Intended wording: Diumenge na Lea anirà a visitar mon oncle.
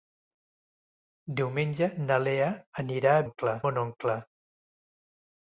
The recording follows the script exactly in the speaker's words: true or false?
false